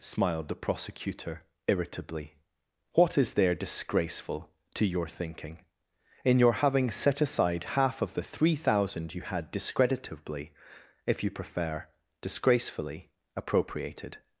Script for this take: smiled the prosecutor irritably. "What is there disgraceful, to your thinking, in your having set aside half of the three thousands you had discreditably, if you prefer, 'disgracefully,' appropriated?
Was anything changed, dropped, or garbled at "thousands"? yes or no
yes